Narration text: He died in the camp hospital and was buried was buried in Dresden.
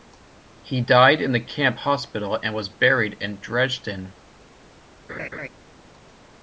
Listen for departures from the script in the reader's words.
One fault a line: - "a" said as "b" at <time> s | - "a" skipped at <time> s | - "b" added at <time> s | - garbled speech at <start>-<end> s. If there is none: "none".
- "was buried" skipped at 3.1 s